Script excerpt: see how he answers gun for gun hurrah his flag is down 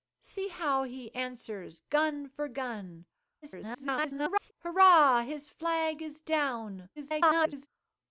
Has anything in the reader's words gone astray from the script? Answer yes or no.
yes